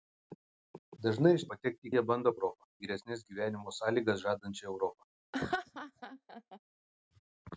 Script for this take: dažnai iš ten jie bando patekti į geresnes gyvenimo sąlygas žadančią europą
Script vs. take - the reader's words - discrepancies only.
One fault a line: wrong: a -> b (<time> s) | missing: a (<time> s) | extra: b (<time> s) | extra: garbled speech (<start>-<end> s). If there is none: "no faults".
wrong: ten -> patekti (1.5 s)
wrong: patekti -> europą (2.3 s)